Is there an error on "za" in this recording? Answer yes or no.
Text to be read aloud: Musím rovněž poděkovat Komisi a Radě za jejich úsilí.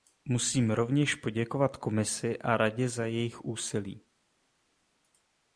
no